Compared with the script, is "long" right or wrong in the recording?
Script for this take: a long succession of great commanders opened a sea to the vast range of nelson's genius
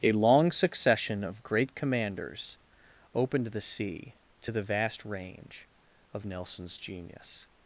right